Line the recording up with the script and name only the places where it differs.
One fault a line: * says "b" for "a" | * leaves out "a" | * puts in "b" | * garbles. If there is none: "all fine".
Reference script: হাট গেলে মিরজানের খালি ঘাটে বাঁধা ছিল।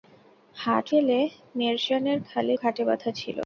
all fine